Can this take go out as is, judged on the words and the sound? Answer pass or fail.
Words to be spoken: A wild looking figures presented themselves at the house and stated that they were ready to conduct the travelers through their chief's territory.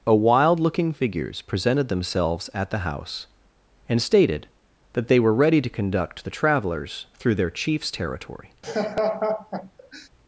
fail